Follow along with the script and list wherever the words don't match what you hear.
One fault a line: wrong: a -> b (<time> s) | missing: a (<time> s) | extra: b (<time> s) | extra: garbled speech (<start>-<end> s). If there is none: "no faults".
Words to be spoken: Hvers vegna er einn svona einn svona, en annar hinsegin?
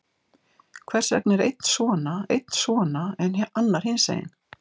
no faults